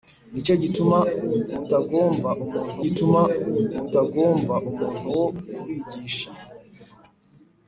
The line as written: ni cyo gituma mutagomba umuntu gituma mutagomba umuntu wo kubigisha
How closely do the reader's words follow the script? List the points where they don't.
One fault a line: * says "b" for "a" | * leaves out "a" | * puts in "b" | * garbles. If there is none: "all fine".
all fine